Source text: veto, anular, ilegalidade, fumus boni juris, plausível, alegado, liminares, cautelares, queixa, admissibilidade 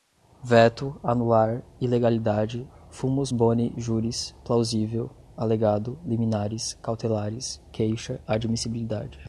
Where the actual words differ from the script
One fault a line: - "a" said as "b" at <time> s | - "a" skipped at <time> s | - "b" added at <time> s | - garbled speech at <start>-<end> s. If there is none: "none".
none